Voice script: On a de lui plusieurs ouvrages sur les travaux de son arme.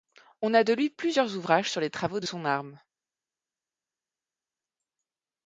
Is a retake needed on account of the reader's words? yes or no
no